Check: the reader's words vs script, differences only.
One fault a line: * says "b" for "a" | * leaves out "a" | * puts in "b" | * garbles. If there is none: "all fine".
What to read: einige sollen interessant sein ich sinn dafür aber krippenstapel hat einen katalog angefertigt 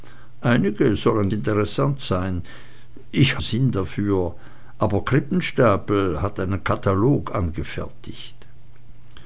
all fine